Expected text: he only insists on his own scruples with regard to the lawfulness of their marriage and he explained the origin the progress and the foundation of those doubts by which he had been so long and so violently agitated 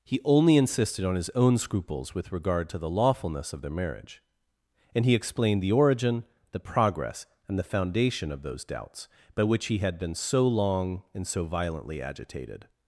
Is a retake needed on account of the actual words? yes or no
yes